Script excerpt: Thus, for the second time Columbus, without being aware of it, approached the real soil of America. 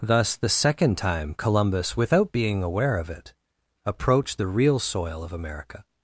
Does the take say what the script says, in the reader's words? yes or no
no